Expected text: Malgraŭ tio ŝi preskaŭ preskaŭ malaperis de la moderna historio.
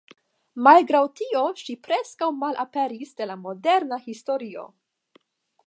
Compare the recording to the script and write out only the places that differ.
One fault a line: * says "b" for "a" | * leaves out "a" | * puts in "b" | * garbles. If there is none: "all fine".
* leaves out "preskaŭ"